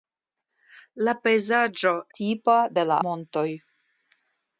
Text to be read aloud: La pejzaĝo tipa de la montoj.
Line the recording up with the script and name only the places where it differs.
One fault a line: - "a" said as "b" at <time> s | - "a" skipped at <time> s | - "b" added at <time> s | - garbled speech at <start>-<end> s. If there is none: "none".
none